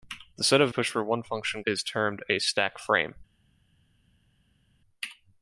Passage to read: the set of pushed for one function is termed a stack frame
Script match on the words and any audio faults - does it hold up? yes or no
yes